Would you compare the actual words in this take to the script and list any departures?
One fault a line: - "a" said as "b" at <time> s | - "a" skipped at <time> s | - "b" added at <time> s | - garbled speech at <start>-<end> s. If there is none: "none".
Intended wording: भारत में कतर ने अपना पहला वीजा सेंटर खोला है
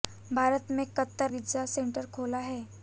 - "ने अपना पहला" skipped at 1.3 s